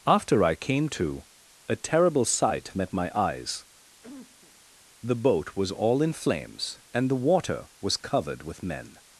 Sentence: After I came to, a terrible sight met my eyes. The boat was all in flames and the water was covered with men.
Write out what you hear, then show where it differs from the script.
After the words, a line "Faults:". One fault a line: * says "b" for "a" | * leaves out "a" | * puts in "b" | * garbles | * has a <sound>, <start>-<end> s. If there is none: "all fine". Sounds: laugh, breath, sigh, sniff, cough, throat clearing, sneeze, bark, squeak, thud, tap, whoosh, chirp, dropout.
After I came to, a terrible sight met my eyes. The boat was all in flames and the water was covered with men.
Faults:
* has a cough, 4.0-4.6 s